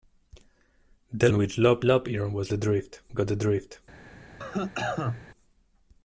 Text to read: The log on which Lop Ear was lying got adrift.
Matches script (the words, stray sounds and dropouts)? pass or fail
fail